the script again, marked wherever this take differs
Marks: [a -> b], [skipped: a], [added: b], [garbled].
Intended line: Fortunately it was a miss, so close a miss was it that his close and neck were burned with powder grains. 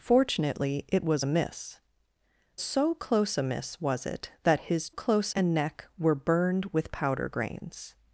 Fortunately it was a miss, so close a miss was it that his close and neck were burned with powder grains.